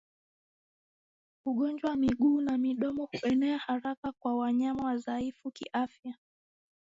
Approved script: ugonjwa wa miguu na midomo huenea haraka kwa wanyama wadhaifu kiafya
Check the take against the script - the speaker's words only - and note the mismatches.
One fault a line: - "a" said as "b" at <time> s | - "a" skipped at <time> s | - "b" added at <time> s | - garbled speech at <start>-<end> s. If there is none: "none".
none